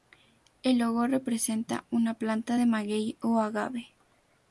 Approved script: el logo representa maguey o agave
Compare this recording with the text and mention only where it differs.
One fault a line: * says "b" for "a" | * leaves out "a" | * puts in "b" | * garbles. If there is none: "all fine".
* puts in "una planta de"